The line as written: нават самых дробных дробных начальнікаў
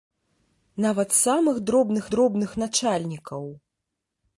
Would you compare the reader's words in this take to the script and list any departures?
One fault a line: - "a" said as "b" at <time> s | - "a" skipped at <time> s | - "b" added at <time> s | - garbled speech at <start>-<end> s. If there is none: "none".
none